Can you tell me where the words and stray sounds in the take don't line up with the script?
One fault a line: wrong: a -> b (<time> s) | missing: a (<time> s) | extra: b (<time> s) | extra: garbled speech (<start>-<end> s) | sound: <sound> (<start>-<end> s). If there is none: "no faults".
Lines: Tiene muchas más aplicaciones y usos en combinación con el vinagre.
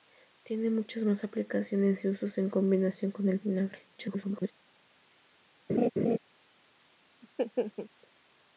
extra: garbled speech (4.0-4.5 s)
sound: laugh (5.7-6.2 s)
sound: laugh (7.2-7.9 s)